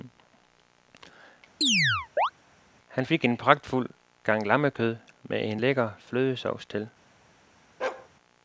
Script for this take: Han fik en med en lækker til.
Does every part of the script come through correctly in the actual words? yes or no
no